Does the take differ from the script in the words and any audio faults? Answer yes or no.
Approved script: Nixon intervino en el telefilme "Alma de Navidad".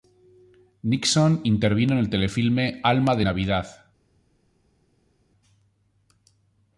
no